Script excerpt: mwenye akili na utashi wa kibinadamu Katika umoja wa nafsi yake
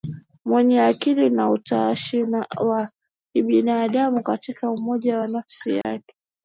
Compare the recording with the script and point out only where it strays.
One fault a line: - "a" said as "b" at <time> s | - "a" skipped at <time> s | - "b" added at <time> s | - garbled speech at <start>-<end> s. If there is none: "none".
none